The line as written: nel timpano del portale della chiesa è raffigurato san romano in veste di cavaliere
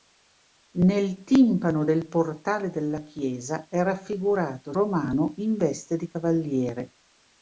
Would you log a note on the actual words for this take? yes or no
yes